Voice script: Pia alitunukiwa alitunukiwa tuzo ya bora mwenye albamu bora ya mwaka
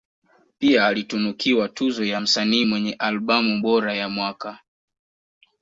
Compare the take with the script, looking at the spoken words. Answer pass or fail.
fail